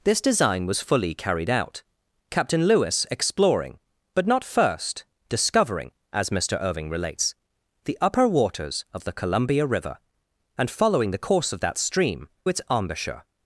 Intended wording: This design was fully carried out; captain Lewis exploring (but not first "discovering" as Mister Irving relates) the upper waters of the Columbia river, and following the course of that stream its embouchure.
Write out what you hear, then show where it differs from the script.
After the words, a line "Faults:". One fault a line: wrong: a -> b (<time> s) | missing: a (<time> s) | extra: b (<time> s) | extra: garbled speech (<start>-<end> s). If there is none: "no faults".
This design was fully carried out; captain Lewis exploring (but not first "discovering" as Mister Irving relates) the upper waters of the Columbia river, and following the course of that stream its embouchure.
Faults:
no faults